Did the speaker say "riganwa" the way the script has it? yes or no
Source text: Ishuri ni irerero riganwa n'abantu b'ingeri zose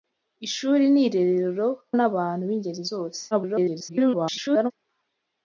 no